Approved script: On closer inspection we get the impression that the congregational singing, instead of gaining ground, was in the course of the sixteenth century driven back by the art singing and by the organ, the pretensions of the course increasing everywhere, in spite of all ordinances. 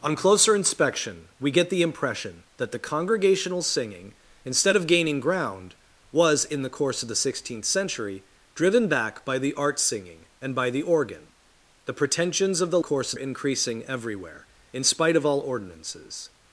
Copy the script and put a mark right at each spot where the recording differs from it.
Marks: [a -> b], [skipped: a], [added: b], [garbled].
On closer inspection we get the impression that the congregational singing, instead of gaining ground, was in the course of the sixteenth century driven back by the art singing and by the organ, the pretensions of the course increasing everywhere, in spite of all ordinances.